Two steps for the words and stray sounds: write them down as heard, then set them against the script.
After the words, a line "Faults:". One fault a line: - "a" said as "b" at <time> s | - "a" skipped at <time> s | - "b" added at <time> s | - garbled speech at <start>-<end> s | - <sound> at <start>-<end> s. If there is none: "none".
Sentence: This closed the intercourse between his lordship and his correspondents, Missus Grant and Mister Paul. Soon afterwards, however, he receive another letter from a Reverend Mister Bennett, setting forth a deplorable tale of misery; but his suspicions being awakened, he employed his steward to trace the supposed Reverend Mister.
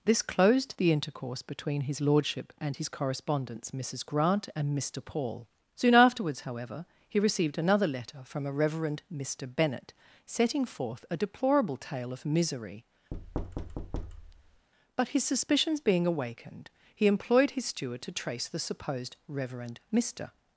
This closed the intercourse between his lordship and his correspondents, Missus Grant and Mister Paul. Soon afterwards, however, he received another letter from a Reverend Mister Bennett, setting forth a deplorable tale of misery; but his suspicions being awakened, he employed his steward to trace the supposed Reverend Mister.
Faults:
- "receive" said as "received" at 7.2 s
- thud at 13.1-14.7 s